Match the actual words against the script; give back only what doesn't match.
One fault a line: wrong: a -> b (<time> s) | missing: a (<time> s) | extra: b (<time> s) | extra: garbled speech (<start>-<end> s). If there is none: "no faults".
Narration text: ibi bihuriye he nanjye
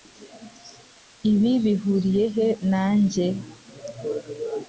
no faults